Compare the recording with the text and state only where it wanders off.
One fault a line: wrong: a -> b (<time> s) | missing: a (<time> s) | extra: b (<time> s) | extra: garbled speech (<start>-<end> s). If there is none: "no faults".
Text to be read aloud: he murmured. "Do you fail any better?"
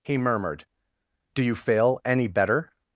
no faults